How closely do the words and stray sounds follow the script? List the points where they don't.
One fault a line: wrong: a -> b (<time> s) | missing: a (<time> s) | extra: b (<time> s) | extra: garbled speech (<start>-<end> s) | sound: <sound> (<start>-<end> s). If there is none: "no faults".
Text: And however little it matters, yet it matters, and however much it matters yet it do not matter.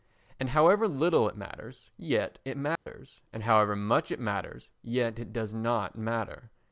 sound: dropout (2.8-2.9 s)
wrong: do -> does (5.3 s)